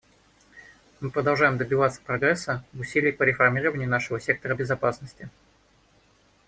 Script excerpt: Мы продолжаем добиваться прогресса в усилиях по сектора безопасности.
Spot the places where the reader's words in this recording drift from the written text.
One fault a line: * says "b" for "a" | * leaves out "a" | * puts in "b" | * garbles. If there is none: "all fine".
* puts in "реформированию нашего"